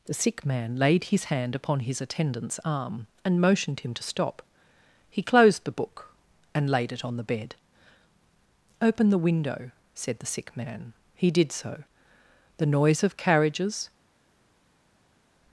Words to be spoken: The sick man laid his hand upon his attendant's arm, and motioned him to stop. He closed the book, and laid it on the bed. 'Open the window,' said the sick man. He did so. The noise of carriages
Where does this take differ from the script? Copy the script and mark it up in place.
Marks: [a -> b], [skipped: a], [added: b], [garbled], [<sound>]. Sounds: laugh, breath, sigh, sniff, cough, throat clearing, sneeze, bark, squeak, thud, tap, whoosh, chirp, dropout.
The sick man laid his hand upon his attendant's arm, and motioned him to stop. He closed the book, and laid it on the bed. 'Open the window,' said the sick man. He did so. The noise of carriages